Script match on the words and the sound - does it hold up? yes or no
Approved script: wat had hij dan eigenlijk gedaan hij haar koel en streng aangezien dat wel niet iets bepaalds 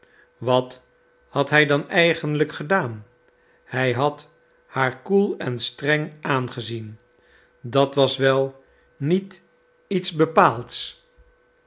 no